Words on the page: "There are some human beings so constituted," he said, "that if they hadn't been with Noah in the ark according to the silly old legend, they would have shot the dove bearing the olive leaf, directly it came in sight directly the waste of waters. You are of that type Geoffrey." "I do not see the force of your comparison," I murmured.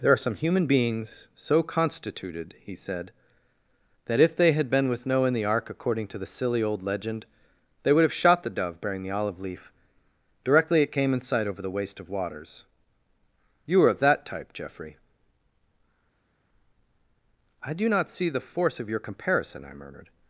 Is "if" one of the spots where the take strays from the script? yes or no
no